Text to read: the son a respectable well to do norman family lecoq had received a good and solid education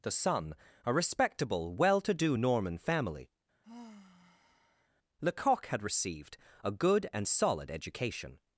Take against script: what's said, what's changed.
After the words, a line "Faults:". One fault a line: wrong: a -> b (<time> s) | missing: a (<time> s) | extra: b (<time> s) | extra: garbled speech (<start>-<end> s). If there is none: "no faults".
the son a respectable well to do norman family lecoq had received a good and solid education
Faults:
no faults